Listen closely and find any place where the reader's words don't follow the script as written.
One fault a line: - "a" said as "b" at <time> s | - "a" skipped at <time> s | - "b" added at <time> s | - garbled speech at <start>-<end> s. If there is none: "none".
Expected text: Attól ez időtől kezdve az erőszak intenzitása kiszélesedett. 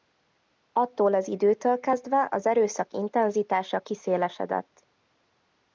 - "ez" said as "az" at 1.1 s